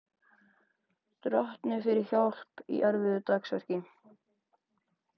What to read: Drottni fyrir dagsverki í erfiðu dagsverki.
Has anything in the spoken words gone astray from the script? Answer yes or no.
yes